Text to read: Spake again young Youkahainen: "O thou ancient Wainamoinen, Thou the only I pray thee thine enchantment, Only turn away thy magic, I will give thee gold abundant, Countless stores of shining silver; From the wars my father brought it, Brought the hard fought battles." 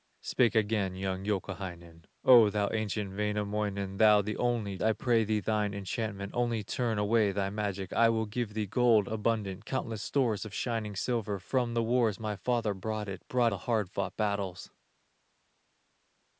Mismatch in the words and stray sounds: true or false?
false